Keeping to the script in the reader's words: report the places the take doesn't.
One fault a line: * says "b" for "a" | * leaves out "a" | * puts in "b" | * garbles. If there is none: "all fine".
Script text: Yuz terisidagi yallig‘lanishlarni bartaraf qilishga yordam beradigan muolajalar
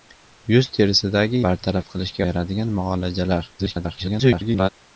* leaves out "yallig‘lanishlarni"
* leaves out "yordam"
* garbles